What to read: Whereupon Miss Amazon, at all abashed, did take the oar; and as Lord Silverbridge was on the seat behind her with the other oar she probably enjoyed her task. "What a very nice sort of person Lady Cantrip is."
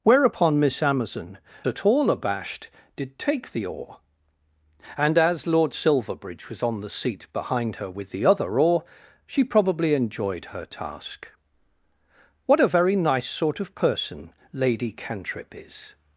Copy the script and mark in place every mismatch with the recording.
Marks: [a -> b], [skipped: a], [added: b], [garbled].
Whereupon Miss Amazon, at all abashed, did take the oar; and as Lord Silverbridge was on the seat behind her with the other oar she probably enjoyed her task. "What a very nice sort of person Lady Cantrip is."